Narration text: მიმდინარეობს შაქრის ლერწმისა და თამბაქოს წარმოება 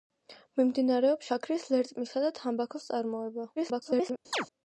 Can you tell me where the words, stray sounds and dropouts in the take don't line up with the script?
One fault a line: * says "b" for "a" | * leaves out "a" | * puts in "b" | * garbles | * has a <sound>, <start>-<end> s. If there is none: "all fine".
* garbles
* has a chirp, 4.3-4.5 s